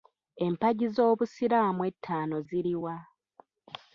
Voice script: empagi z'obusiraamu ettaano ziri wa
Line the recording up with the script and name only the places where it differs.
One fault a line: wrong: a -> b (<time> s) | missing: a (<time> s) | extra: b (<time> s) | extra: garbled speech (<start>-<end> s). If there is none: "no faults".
no faults